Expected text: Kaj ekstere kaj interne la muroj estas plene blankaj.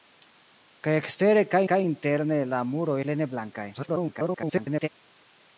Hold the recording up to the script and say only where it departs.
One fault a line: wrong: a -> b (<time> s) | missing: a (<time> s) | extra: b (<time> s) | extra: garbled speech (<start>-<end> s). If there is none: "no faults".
extra: kaj (1.7 s)
missing: estas (3.0 s)
extra: garbled speech (3.7-4.9 s)